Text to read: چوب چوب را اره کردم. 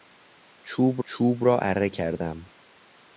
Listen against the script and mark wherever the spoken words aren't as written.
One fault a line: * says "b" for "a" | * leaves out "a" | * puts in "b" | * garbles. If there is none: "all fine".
all fine